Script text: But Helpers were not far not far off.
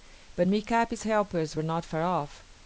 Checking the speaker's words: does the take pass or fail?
fail